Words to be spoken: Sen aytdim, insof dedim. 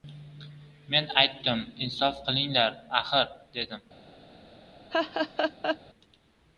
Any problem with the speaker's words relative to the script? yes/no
yes